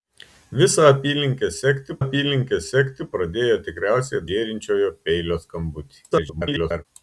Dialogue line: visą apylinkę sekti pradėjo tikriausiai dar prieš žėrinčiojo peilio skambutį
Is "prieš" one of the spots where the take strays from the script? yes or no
yes